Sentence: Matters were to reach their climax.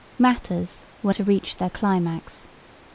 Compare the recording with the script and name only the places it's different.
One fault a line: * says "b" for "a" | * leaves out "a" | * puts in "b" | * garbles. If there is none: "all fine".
all fine